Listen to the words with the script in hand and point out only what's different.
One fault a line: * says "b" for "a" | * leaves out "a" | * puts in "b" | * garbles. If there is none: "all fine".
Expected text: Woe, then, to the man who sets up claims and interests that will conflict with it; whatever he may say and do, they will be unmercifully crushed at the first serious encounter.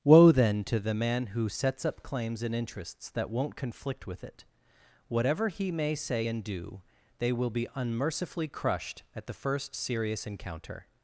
* says "won't" for "will"